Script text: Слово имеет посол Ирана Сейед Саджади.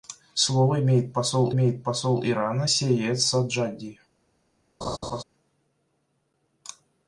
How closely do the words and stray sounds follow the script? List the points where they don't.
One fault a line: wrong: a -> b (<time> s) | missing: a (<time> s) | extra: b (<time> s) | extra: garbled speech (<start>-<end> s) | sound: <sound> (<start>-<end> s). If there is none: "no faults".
extra: имеет посол (1.5 s)
sound: laugh (4.8-5.2 s)